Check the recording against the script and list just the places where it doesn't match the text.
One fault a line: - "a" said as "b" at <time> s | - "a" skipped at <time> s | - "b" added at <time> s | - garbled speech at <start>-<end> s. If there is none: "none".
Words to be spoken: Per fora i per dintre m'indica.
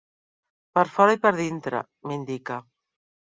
none